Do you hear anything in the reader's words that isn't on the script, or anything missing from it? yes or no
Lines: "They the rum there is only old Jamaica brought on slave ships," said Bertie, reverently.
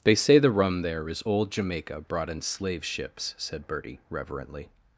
yes